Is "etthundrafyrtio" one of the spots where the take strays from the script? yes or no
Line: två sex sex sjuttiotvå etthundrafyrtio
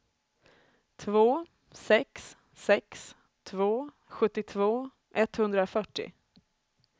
no